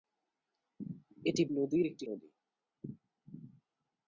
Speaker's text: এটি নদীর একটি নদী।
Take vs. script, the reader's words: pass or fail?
pass